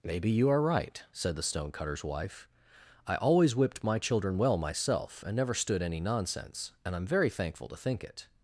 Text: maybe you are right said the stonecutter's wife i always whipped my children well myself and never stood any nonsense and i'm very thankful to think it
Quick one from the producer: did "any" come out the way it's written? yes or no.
yes